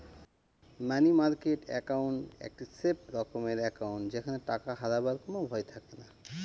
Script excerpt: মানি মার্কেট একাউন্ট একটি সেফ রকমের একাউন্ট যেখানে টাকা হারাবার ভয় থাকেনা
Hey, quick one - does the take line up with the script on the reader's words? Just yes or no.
no